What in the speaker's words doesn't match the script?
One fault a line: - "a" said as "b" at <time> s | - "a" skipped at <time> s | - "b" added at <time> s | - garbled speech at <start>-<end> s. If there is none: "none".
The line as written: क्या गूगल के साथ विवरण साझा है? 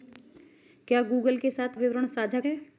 none